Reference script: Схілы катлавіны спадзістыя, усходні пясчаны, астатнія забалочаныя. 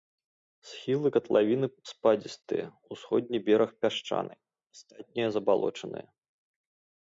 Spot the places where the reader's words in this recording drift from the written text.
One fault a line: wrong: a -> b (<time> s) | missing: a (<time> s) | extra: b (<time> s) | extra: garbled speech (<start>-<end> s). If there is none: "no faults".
extra: бераг (3.5 s)